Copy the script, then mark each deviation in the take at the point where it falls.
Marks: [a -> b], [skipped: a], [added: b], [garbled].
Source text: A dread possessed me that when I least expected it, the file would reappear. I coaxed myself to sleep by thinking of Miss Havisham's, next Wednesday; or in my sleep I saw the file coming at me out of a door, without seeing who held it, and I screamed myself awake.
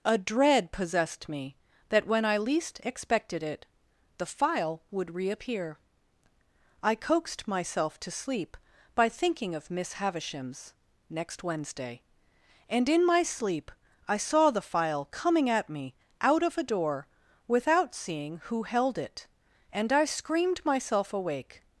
A dread possessed me that when I least expected it, the file would reappear. I coaxed myself to sleep by thinking of Miss Havisham's, next Wednesday; [or -> and] in my sleep I saw the file coming at me out of a door, without seeing who held it, and I screamed myself awake.